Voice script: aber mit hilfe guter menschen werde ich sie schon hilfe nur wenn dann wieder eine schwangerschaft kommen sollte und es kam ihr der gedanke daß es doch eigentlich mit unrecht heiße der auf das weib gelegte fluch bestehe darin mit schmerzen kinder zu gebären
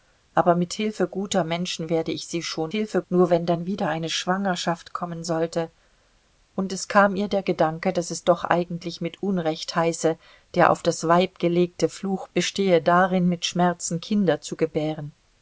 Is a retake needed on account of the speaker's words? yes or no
no